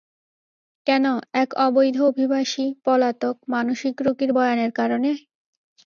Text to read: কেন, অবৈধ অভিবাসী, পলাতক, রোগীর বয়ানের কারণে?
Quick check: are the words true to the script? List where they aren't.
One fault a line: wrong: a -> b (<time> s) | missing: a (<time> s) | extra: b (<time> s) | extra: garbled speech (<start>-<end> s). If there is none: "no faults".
extra: এক (1.3 s)
extra: মানসিক (3.5 s)